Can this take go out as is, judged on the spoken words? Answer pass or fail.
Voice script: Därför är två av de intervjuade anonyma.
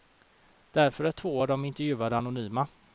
pass